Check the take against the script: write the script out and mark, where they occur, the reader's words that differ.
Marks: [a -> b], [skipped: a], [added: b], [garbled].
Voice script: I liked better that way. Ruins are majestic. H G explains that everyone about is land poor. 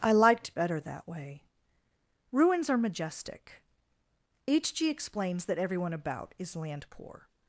I liked better that way. Ruins are majestic. H G explains that everyone about is land poor.